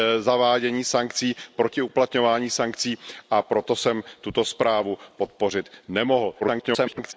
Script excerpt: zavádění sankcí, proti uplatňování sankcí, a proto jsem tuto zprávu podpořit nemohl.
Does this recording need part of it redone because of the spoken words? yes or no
yes